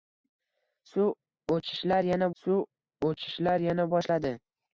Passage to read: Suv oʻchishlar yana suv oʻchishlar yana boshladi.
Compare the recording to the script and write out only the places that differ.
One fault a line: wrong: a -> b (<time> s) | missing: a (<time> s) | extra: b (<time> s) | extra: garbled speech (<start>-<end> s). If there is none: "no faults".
no faults